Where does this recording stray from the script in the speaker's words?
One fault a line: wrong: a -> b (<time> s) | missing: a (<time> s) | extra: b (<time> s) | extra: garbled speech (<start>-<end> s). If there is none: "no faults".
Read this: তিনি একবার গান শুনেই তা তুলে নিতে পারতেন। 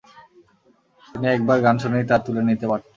no faults